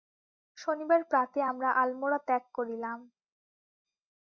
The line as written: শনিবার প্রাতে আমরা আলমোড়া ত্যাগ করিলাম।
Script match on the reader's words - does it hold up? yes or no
yes